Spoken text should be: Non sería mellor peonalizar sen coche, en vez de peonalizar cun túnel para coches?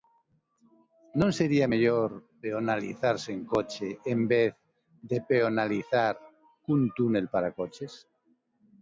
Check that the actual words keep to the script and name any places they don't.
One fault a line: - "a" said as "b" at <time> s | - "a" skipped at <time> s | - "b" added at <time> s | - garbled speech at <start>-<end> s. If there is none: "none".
none